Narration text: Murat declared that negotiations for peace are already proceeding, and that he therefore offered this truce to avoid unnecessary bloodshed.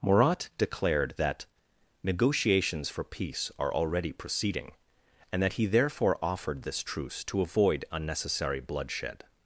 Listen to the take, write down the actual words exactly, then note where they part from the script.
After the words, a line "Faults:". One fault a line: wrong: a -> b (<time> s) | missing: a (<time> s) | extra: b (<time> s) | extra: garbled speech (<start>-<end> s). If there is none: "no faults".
Murat declared that negotiations for peace are already proceeding, and that he therefore offered this truce to avoid unnecessary bloodshed.
Faults:
no faults